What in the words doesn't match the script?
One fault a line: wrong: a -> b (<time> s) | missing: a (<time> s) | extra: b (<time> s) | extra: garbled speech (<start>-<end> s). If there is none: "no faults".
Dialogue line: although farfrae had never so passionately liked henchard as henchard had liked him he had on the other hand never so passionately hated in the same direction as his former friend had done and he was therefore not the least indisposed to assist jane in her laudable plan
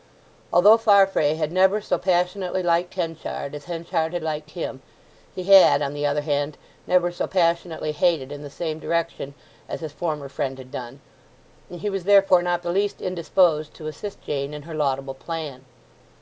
no faults